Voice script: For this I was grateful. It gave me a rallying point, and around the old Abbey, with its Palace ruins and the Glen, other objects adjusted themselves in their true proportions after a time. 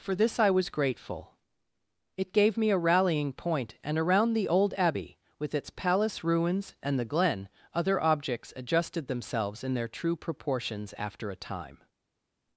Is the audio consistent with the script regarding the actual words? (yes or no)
yes